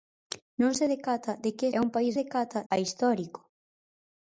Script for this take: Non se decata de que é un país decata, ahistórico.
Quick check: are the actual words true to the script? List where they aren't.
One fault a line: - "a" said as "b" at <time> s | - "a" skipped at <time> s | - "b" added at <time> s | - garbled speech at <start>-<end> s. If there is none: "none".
none